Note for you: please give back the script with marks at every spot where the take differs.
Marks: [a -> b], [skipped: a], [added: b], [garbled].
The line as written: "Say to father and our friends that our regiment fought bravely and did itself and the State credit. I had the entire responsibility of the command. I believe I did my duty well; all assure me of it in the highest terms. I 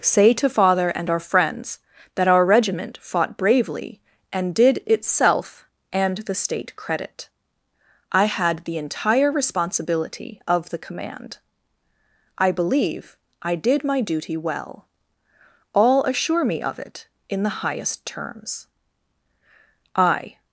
"Say to father and our friends that our regiment fought bravely and did itself and the State credit. I had the entire responsibility of the command. I believe I did my duty well; all assure me of it in the highest terms. I